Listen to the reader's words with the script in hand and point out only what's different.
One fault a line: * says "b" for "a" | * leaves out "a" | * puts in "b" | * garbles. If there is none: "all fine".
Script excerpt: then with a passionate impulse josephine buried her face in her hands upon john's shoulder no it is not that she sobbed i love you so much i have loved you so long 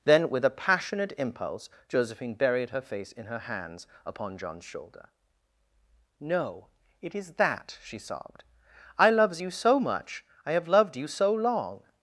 * leaves out "not"
* says "loves" for "love"